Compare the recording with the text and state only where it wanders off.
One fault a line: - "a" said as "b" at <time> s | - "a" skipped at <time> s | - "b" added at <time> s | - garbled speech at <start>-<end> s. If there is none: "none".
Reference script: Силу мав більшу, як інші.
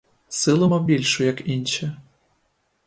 none